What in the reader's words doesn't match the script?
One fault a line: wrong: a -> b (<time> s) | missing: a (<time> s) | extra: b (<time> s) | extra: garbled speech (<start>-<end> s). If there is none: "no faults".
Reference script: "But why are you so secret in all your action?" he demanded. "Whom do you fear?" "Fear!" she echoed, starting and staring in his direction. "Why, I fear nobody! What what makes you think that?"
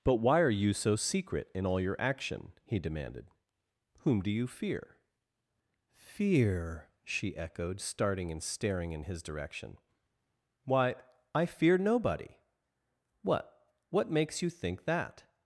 no faults